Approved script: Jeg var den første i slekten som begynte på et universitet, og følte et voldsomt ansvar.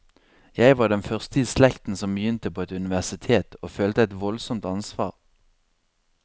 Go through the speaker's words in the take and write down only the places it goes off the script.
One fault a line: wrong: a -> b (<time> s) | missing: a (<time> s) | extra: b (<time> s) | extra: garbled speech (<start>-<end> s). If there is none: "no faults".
no faults